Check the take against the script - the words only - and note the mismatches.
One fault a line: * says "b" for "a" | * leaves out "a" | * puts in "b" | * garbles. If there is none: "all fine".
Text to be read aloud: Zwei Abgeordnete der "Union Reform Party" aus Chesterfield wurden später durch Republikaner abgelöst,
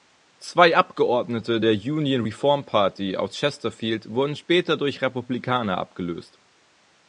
all fine